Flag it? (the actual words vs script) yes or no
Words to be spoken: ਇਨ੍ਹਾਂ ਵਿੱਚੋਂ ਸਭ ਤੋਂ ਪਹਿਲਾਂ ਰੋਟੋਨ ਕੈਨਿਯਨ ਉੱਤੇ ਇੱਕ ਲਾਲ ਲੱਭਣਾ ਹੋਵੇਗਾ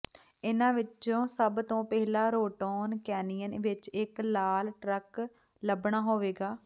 yes